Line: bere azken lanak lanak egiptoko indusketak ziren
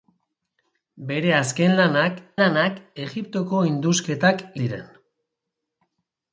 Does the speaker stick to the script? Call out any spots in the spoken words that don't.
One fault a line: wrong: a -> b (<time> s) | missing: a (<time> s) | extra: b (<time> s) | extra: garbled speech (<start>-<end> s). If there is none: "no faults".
no faults